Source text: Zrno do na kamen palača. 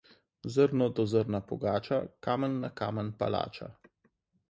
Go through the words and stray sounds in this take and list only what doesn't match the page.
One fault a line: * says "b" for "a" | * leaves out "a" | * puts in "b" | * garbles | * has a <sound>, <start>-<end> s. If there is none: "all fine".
* puts in "zrna pogača kamen"